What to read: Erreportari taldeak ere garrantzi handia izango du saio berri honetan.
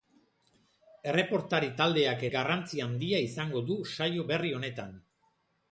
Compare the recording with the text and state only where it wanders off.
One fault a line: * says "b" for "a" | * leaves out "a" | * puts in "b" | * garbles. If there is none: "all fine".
* leaves out "ere"